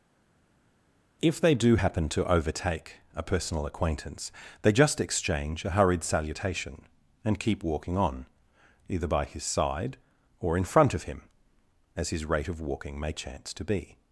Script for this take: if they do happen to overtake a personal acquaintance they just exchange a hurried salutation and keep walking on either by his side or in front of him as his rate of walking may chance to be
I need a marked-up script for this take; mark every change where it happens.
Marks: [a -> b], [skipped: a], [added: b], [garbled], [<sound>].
if they do happen to overtake a personal acquaintance they just exchange a hurried salutation and keep walking on either by his side or in front of him as his rate of walking may chance to be